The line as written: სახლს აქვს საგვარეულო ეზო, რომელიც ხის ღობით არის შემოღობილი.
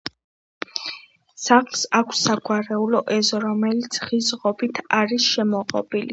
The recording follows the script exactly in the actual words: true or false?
true